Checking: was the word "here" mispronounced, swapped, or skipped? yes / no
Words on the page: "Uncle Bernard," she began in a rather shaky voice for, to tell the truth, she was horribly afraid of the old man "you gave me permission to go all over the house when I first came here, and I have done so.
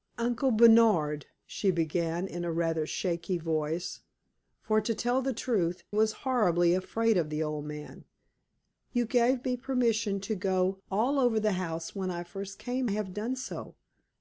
yes